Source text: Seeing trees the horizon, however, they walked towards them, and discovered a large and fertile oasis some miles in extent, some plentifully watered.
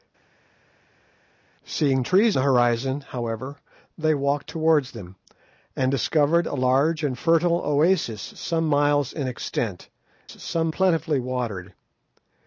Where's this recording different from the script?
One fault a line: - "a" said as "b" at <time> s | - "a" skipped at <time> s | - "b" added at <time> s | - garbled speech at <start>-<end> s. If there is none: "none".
none